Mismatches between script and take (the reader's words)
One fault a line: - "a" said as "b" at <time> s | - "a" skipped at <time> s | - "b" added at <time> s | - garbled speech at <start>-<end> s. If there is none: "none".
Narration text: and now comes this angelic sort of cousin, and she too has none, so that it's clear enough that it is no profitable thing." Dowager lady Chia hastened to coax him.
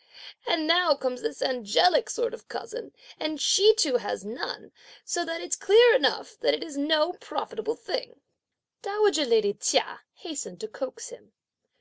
none